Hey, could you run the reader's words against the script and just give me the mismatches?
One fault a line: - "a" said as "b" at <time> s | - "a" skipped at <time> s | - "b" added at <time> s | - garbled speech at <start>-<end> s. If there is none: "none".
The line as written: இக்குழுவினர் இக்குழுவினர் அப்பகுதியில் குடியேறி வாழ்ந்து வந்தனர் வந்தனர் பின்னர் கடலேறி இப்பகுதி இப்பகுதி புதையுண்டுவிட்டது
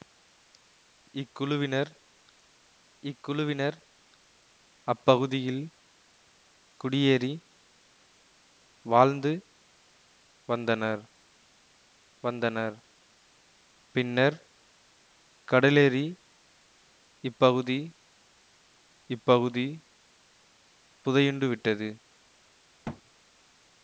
none